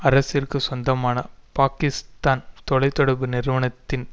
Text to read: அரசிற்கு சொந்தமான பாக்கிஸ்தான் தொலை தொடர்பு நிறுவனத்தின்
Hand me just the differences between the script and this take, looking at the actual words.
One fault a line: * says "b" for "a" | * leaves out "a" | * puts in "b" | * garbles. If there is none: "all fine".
all fine